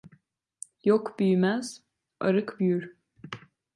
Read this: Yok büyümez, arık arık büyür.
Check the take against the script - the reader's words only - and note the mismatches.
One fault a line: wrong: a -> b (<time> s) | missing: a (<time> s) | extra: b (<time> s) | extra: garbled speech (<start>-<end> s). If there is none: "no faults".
missing: arık (2.6 s)